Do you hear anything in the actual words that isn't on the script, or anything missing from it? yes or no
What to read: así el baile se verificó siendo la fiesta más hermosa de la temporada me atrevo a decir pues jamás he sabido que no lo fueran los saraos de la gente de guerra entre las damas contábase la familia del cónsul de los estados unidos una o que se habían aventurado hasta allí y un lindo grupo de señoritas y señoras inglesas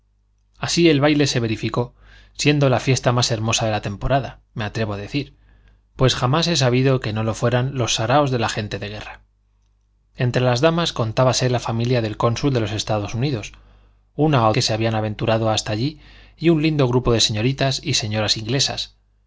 no